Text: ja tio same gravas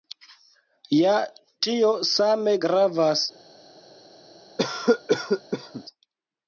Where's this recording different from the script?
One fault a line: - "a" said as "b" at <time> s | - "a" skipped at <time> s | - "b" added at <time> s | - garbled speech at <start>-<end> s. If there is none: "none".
none